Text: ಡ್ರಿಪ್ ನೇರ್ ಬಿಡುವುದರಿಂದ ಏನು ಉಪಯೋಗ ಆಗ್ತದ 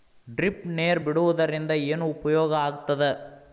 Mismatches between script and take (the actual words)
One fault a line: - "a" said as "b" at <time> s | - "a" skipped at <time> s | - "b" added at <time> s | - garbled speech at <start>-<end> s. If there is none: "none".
none